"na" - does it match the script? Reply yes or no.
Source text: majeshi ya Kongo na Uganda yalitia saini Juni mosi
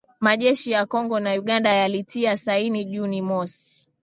yes